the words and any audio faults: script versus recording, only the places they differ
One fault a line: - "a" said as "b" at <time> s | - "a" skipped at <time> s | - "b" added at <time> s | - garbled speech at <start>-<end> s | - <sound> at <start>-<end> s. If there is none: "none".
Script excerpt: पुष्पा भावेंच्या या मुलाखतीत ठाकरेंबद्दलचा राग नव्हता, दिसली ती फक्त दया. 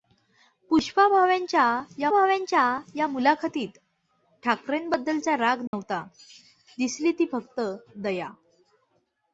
- "भावेंच्या या" added at 2.1 s
- dropout at 5.7-5.7 s